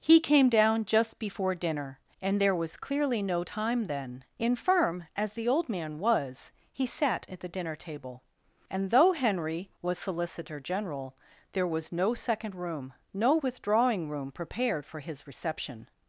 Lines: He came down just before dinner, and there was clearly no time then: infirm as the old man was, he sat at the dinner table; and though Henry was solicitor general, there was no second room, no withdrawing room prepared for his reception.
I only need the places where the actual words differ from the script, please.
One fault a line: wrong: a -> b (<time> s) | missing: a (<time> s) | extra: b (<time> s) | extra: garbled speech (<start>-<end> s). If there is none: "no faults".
no faults